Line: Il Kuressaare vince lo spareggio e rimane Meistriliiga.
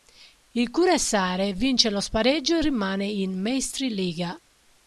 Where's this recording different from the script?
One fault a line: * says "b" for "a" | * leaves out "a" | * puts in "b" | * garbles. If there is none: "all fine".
* puts in "in"